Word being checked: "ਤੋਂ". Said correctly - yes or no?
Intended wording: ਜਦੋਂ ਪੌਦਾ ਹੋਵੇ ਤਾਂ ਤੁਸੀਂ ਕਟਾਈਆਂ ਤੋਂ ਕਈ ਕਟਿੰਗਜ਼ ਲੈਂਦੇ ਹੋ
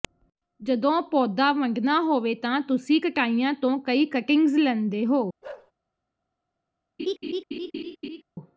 yes